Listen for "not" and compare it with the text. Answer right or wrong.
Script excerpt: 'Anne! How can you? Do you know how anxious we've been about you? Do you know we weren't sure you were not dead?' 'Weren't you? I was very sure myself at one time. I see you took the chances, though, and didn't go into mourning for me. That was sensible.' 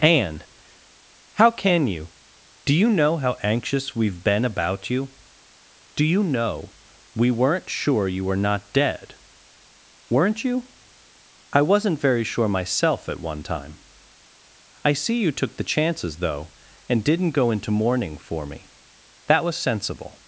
right